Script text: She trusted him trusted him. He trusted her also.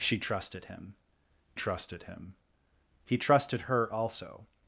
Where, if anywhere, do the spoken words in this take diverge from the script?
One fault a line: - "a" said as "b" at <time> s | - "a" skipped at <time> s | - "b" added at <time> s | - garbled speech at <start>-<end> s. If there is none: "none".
none